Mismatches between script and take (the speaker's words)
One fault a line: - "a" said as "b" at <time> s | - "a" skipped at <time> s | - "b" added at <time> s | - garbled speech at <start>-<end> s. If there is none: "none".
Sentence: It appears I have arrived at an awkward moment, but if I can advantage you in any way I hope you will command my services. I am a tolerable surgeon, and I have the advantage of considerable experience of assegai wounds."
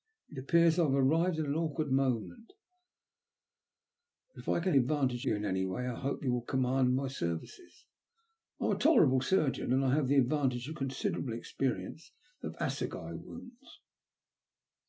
none